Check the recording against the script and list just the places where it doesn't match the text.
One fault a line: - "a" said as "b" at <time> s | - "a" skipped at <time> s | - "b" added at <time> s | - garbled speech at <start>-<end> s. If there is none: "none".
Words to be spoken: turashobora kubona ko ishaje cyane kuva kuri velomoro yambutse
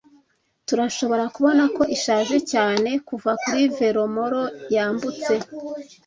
none